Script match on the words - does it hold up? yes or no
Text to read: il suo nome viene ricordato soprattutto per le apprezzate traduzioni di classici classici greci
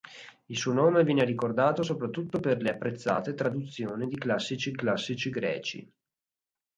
yes